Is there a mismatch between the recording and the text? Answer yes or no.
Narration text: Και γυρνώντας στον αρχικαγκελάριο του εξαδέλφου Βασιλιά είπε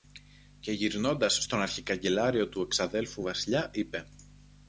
no